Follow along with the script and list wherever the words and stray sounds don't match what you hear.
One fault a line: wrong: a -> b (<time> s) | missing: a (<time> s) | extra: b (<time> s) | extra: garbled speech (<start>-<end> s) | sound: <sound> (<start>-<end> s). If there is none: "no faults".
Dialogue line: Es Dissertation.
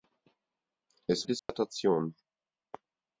sound: dropout (1.4-1.5 s)